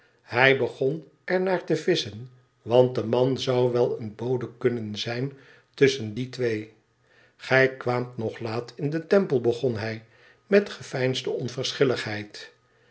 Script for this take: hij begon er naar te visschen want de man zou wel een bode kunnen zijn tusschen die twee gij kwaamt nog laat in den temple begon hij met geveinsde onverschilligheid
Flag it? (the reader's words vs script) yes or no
no